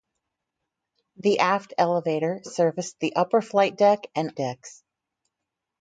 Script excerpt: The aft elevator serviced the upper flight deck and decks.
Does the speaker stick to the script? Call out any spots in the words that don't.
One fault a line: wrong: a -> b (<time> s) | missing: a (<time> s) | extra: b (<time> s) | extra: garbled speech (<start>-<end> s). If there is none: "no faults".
no faults